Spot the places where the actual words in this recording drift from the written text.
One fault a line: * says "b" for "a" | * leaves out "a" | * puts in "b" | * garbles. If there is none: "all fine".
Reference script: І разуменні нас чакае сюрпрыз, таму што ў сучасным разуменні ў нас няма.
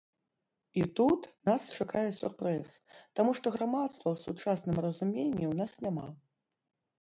* says "тут" for "разуменні"
* puts in "грамадства"